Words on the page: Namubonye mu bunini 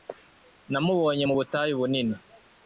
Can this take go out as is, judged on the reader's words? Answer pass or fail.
fail